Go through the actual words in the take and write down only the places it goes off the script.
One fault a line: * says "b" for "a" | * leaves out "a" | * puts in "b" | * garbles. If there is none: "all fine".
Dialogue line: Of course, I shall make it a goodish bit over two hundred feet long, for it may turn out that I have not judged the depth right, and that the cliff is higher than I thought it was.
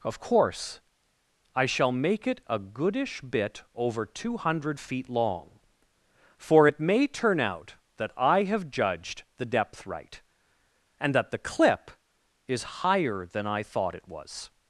* leaves out "not"
* says "clip" for "cliff"